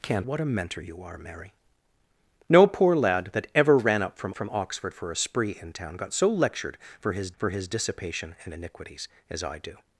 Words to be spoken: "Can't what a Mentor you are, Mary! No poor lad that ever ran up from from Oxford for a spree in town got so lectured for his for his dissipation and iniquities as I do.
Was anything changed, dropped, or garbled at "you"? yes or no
no